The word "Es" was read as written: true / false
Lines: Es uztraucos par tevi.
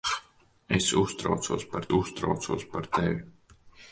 true